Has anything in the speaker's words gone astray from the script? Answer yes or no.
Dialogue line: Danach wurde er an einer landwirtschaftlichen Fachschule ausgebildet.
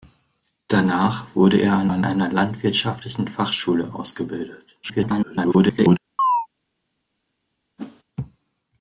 yes